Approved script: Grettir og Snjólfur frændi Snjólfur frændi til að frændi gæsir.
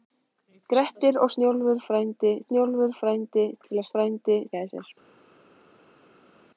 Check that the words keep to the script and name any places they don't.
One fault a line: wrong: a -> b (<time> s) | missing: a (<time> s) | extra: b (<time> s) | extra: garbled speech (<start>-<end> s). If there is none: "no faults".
no faults